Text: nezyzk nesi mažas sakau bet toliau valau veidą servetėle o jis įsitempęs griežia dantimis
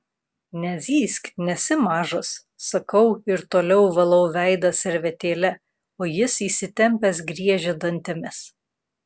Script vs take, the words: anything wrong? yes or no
yes